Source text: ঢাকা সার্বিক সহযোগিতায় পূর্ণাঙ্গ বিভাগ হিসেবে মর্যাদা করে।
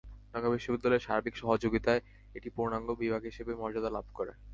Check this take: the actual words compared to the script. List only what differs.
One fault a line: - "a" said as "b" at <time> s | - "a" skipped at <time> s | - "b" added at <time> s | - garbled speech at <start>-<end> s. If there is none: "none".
- "বিশ্ববিদ্যালয়ের" added at 0.5 s
- "এটি" added at 2.4 s
- "লাভ" added at 3.9 s